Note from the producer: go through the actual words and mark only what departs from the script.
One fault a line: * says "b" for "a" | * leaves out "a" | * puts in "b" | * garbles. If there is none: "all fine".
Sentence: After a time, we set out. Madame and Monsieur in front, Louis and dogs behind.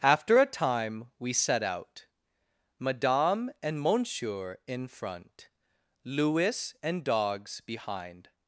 all fine